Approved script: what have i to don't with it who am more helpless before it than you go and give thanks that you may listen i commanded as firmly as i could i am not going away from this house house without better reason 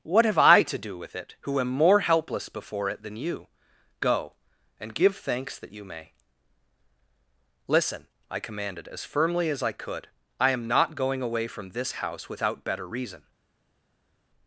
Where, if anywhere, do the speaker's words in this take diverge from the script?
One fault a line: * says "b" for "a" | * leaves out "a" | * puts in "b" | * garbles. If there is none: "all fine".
* says "do" for "don't"
* leaves out "house"